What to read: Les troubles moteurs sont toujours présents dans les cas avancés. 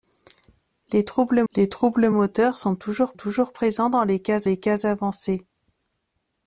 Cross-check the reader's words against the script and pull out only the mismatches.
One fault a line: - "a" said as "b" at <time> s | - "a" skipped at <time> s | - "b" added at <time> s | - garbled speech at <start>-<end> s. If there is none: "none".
- "les troubles" added at 1.5 s
- "toujours" added at 3.1 s
- "les cas" added at 4.4 s